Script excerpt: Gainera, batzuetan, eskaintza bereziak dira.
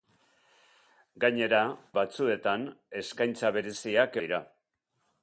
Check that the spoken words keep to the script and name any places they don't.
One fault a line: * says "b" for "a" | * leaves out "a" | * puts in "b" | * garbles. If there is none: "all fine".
all fine